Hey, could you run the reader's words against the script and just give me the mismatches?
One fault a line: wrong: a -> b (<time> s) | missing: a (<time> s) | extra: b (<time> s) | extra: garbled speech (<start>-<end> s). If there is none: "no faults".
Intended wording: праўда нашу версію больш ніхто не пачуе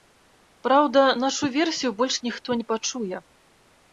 no faults